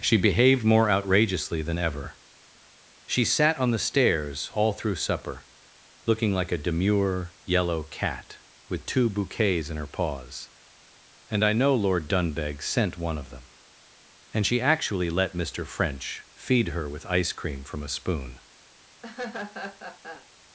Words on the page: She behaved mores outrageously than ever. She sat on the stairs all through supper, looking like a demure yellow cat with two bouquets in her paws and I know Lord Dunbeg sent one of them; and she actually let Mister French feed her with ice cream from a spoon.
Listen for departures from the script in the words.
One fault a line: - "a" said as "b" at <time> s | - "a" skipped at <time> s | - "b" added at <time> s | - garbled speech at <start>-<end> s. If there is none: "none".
- "mores" said as "more" at 0.7 s